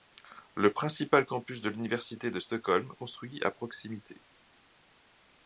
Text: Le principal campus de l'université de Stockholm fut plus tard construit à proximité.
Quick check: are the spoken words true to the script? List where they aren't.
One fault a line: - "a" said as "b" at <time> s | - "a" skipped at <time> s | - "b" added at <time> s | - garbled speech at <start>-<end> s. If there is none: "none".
- "fut plus tard" skipped at 2.9 s